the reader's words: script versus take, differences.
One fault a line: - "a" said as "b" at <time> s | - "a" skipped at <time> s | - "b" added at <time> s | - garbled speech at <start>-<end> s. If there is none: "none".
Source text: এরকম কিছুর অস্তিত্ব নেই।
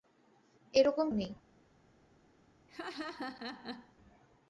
- "কিছুর অস্তিত্ব" skipped at 1.1 s